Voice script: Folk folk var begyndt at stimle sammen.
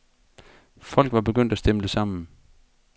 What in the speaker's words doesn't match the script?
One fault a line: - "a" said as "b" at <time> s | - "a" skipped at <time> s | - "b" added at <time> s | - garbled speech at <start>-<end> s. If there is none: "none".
- "folk" skipped at 1.1 s